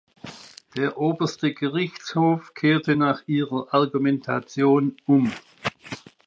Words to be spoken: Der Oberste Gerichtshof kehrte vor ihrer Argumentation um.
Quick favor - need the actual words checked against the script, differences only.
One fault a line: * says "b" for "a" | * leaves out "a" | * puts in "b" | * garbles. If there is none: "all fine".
* says "nach" for "vor"